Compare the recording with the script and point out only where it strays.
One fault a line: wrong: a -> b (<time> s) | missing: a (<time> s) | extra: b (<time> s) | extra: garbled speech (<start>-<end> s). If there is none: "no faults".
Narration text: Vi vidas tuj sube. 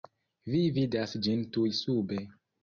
extra: ĝin (1.3 s)